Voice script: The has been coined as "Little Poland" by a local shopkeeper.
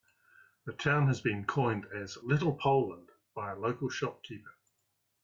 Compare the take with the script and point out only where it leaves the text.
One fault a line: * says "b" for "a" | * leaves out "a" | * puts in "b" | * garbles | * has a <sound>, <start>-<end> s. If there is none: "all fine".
* puts in "town"